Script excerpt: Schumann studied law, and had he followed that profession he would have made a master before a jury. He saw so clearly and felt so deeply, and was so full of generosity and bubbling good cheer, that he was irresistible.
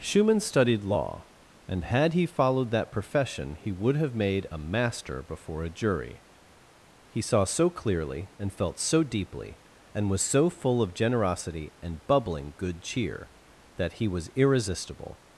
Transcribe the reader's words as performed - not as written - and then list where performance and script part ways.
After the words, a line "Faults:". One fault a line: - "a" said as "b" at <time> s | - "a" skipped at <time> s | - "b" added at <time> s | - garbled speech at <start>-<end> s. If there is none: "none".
Schumann studied law, and had he followed that profession he would have made a master before a jury. He saw so clearly and felt so deeply, and was so full of generosity and bubbling good cheer, that he was irresistible.
Faults:
none